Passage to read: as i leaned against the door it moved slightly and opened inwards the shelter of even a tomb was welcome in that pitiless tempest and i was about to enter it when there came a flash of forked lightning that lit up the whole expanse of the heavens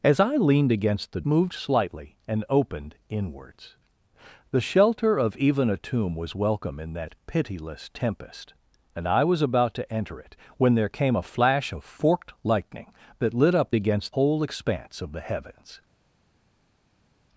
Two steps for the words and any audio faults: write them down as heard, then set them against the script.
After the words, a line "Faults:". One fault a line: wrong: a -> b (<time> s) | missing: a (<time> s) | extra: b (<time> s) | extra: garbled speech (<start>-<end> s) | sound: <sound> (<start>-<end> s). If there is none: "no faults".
as i leaned against the moved slightly and opened inwards the shelter of even a tomb was welcome in that pitiless tempest and i was about to enter it when there came a flash of forked lightning that lit up against whole expanse of the heavens
Faults:
missing: door it (1.2 s)
wrong: the -> against (13.7 s)